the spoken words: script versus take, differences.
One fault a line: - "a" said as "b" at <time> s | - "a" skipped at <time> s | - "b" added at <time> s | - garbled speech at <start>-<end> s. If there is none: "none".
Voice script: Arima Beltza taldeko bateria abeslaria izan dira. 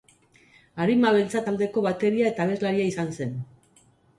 - "eta" added at 2.3 s
- "dira" said as "zen" at 3.2 s